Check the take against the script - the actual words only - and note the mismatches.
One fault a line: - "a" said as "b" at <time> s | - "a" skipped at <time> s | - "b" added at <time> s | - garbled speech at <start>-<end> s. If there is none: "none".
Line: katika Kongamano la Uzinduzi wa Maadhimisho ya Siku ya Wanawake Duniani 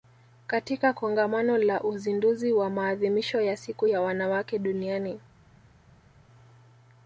none